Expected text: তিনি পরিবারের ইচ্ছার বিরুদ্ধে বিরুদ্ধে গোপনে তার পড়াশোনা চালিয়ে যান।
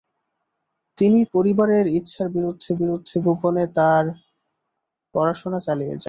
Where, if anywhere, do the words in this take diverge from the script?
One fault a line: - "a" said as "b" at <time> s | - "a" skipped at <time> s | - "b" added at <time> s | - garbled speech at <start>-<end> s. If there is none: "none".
none